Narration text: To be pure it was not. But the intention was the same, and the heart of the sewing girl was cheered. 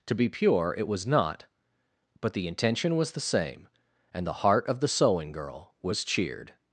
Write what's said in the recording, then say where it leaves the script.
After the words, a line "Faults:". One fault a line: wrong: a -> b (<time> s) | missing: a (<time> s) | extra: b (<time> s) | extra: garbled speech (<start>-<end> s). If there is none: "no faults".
To be pure it was not. But the intention was the same, and the heart of the sewing girl was cheered.
Faults:
no faults